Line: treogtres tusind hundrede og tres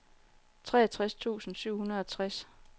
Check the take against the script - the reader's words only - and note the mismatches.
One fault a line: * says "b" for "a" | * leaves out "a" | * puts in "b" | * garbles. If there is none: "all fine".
* puts in "syv"